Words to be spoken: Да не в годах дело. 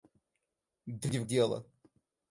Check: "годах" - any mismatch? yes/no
yes